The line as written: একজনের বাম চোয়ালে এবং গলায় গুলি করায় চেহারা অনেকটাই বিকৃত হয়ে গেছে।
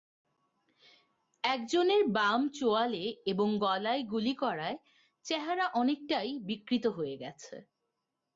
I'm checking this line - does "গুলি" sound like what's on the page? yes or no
yes